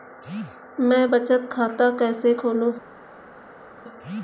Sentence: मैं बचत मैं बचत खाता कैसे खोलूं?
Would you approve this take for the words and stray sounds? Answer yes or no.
no